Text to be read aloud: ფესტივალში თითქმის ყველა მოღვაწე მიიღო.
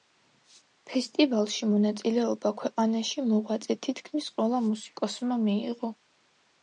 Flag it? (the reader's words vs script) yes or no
yes